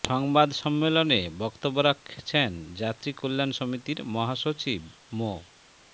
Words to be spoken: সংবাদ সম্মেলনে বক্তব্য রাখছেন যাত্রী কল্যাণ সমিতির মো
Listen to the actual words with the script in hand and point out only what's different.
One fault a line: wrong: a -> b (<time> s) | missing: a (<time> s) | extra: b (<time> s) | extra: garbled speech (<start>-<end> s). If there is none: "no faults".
extra: মহাসচিব (4.1 s)